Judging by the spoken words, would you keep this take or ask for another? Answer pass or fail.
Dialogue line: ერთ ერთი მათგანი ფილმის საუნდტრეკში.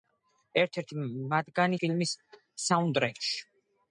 pass